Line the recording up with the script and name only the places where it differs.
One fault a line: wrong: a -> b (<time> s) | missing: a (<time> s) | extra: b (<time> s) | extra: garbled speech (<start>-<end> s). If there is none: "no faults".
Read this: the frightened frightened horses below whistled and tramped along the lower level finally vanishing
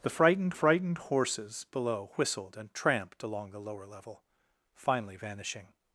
no faults